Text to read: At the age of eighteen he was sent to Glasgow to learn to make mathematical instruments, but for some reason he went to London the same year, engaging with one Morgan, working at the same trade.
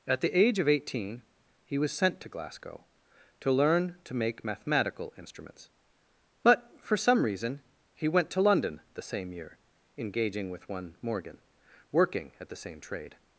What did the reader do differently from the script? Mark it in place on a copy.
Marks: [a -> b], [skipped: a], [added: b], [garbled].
At the age of eighteen he was sent to Glasgow to learn to make mathematical instruments, but for some reason he went to London the same year, engaging with one Morgan, working at the same trade.